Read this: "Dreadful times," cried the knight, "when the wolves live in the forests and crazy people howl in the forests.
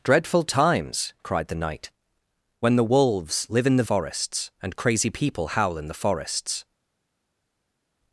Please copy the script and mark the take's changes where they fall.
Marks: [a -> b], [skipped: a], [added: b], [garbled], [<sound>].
"Dreadful times," cried the knight, "when the wolves live in the forests and crazy people howl in the forests.